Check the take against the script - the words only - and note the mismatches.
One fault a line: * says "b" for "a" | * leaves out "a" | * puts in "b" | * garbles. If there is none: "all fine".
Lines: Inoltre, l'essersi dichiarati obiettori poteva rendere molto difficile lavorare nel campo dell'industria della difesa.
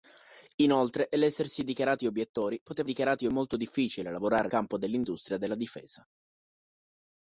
* says "dichiarati" for "rendere"
* leaves out "nel"